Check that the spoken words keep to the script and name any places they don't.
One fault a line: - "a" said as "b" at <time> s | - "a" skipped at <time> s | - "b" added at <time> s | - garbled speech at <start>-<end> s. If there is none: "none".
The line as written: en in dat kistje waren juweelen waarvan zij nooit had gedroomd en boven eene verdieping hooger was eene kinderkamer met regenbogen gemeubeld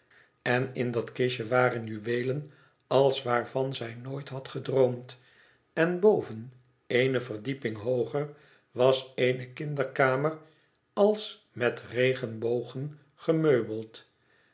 - "als" added at 2.9 s
- "als" added at 10.9 s